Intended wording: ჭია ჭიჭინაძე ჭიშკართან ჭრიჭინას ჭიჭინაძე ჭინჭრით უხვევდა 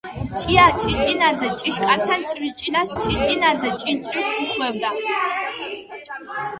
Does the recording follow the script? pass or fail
pass